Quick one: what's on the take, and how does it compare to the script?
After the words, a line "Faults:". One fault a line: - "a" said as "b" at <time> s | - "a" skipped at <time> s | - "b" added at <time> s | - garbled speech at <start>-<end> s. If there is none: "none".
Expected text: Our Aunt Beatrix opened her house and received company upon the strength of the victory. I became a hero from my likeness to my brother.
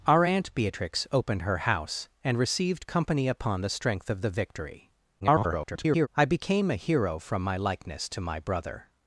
Our Aunt Beatrix opened her house and received company upon the strength of the victory. [garbled] I became a hero from my likeness to my brother.
Faults:
- garbled speech at 5.2-6.1 s